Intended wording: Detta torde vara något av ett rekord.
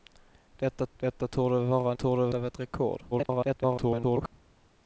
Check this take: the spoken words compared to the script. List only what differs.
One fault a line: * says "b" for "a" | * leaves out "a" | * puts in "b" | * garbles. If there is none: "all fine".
* puts in "detta"
* says "torde" for "något"
* garbles